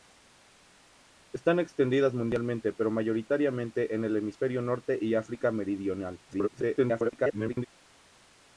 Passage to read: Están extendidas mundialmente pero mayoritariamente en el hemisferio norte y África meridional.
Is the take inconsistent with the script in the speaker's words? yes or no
yes